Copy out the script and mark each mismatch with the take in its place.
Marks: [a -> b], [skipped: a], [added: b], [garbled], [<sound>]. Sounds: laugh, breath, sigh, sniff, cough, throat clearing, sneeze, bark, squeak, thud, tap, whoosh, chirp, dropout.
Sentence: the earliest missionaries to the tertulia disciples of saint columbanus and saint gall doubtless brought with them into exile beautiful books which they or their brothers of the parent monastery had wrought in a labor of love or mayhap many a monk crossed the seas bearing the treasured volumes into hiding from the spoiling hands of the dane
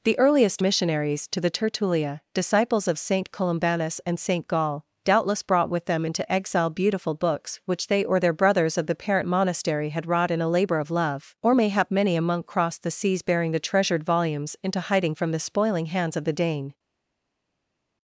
the earliest missionaries to the tertulia disciples of saint columbanus and saint gall doubtless brought with them into exile beautiful books which they or their brothers of the parent monastery had wrought in a labor of love or mayhap many a monk crossed the seas bearing the treasured volumes into hiding from the spoiling hands of the dane